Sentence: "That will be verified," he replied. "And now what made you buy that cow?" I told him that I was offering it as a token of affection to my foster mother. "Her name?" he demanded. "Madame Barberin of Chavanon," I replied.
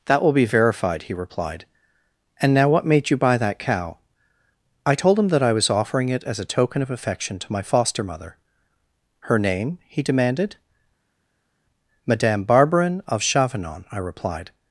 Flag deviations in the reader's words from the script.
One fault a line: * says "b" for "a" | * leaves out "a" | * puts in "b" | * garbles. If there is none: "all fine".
all fine